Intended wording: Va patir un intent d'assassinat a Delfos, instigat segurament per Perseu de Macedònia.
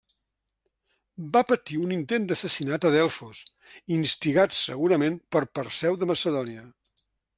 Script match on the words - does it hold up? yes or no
yes